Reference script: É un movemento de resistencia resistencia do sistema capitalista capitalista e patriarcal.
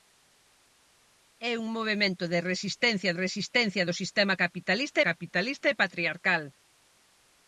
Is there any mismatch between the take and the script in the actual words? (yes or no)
no